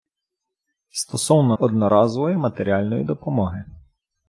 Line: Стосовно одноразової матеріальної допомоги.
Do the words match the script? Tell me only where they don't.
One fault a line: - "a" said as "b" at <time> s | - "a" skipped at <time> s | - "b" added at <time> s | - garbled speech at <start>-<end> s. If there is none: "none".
none